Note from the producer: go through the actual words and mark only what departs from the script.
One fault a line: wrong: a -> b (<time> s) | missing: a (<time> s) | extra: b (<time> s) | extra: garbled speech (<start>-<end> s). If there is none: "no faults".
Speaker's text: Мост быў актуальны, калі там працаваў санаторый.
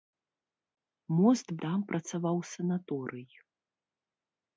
missing: быў актуальны калі (1.5 s)